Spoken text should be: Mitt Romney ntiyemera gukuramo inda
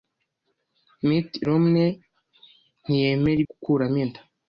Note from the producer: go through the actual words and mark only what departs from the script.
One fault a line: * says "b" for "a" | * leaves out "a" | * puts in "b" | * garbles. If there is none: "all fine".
all fine